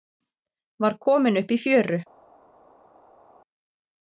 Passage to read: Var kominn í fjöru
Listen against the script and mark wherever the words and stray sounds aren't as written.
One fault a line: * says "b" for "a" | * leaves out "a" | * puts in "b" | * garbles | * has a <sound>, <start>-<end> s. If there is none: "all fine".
* puts in "upp"